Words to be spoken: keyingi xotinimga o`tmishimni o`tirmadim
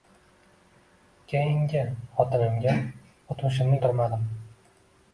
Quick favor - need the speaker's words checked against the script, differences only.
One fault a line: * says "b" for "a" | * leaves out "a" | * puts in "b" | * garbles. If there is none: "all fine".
all fine